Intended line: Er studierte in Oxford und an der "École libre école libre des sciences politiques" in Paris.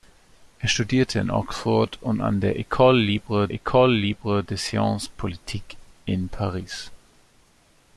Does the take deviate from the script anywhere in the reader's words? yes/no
no